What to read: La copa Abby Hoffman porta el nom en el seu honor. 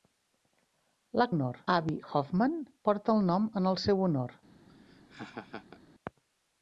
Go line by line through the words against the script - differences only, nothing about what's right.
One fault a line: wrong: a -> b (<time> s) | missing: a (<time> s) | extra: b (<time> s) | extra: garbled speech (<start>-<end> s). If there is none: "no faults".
wrong: copa -> honor (1.3 s)